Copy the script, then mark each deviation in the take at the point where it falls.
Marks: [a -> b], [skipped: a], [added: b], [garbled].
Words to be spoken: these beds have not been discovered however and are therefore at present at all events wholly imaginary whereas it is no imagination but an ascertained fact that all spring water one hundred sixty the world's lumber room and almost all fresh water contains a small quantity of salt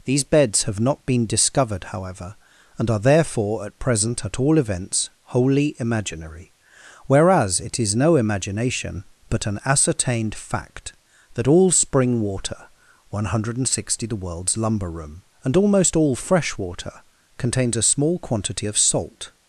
these beds have not been discovered however and are therefore at present at all events wholly imaginary whereas it is no imagination but an ascertained fact that all spring water one hundred sixty the world's lumber room and almost all fresh water contains a small quantity of salt